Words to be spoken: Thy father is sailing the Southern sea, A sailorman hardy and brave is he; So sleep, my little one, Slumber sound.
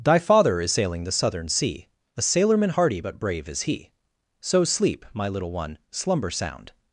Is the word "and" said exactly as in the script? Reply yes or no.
no